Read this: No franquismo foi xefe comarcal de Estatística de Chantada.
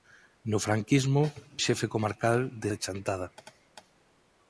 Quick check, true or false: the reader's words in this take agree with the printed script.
false